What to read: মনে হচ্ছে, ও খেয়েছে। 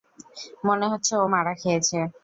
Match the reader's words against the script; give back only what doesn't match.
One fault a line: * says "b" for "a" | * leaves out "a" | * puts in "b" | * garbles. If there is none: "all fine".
* puts in "মারা"